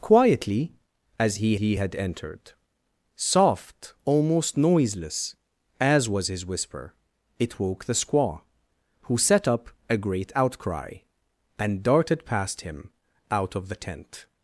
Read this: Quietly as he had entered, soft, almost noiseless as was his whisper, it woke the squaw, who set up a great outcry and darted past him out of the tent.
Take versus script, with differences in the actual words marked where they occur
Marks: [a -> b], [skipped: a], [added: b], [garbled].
Quietly as he [added: he] had entered, soft, almost noiseless as was his whisper, it woke the squaw, who set up a great outcry and darted past him out of the tent.